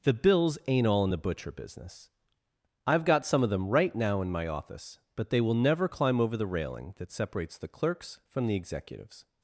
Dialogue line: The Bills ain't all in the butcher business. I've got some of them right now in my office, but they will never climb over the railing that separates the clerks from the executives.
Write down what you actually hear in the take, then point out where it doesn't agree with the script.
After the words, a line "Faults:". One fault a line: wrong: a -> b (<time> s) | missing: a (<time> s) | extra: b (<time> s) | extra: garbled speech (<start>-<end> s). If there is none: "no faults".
The Bills ain't all in the butcher business. I've got some of them right now in my office, but they will never climb over the railing that separates the clerks from the executives.
Faults:
no faults